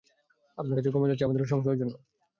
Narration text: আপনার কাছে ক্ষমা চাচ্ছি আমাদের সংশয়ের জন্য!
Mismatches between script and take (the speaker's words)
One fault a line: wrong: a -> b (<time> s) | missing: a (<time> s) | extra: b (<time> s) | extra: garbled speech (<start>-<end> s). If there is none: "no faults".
no faults